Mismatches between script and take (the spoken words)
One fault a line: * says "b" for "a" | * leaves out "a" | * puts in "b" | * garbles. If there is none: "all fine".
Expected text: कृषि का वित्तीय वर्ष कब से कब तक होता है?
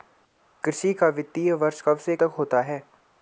* leaves out "कब"